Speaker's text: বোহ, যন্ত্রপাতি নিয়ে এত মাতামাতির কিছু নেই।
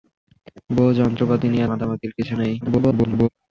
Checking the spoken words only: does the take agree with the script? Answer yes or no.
no